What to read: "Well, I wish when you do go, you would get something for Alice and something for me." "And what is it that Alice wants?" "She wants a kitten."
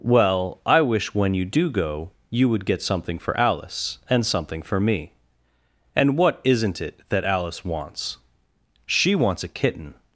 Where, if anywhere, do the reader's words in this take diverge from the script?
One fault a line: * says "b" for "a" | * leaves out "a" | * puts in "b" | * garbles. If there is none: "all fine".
* says "isn't" for "is"